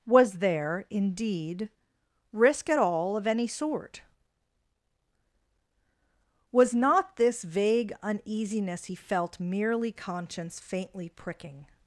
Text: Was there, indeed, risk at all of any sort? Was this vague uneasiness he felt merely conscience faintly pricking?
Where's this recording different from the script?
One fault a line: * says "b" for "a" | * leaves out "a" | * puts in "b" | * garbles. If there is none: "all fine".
* puts in "not"